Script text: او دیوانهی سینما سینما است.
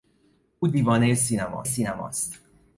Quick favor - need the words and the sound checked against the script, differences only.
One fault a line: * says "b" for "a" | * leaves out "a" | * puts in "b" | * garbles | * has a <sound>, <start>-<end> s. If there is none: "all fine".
all fine